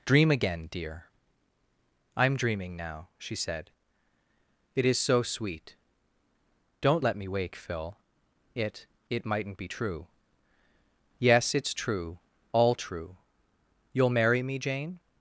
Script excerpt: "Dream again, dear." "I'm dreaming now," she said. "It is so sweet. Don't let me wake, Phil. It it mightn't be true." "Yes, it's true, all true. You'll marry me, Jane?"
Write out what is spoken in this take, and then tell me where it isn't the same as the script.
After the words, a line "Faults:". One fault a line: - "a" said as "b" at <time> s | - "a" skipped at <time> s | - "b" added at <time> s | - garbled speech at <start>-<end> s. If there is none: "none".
"Dream again, dear." "I'm dreaming now," she said. "It is so sweet. Don't let me wake, Phil. It it mightn't be true." "Yes, it's true, all true. You'll marry me, Jane?"
Faults:
none